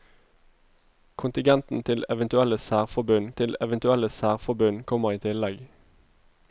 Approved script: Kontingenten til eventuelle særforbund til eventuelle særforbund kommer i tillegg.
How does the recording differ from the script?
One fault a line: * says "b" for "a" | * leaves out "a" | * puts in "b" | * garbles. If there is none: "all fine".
all fine